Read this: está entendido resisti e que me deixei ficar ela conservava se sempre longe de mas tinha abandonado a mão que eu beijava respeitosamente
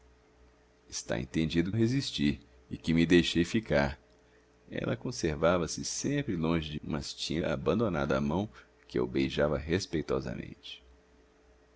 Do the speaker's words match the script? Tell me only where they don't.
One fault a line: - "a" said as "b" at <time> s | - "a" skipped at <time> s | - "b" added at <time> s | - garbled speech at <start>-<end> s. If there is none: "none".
none